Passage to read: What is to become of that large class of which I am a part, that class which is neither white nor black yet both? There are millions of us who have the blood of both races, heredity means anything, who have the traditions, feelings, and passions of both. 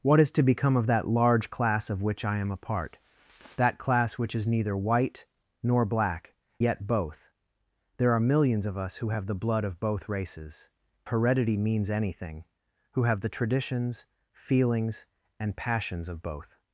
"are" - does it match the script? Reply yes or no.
yes